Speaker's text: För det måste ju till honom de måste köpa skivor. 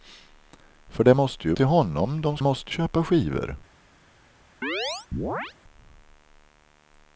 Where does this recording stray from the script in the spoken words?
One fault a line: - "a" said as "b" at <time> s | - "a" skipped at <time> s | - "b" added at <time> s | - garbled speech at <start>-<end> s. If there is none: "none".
none